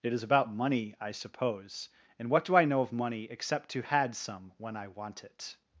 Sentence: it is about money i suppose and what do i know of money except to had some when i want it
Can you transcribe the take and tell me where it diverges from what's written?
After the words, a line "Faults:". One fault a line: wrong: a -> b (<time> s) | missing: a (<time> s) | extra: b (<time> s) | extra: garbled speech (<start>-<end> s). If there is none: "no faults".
it is about money i suppose and what do i know of money except to had some when i want it
Faults:
no faults